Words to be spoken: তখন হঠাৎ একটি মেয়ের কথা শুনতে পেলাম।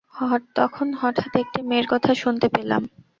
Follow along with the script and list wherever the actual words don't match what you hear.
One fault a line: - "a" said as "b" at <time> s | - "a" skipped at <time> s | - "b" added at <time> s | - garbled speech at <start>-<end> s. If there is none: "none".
none